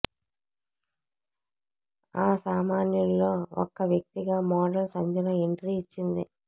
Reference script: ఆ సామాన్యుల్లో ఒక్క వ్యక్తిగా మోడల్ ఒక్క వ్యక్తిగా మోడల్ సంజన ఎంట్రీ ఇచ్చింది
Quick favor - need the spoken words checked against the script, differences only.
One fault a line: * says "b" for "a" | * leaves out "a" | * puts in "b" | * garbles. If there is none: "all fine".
* leaves out "ఒక్క వ్యక్తిగా మోడల్"